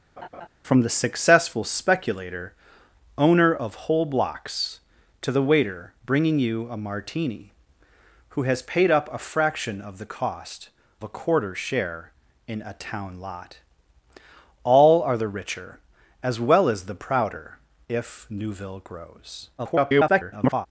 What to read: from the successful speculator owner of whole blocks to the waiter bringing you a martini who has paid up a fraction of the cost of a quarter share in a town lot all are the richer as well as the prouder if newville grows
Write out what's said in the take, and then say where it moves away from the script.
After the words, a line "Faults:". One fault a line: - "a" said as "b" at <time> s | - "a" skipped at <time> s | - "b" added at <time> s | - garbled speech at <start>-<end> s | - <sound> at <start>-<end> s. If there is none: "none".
from the successful speculator owner of whole blocks to the waiter bringing you a martini who has paid up a fraction of the cost a quarter share in a town lot all are the richer as well as the prouder if newville grows [garbled]
Faults:
- laugh at 0.2-0.5 s
- "of" skipped at 10.7 s
- garbled speech at 19.6-20.7 s